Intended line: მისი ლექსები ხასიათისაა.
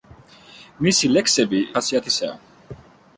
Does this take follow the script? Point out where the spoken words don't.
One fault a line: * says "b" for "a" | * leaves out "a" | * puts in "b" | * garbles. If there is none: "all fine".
all fine